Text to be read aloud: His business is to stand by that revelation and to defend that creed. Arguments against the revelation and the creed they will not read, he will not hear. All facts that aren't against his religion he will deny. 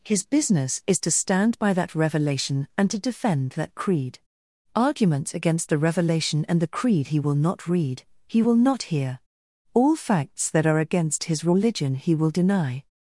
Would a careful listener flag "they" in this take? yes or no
yes